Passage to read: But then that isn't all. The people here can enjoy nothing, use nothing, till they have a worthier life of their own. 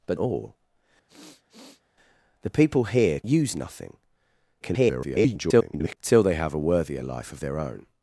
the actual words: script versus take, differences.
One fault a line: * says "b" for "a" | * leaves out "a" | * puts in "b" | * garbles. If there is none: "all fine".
* leaves out "then that isn't"
* leaves out "can enjoy nothing"
* garbles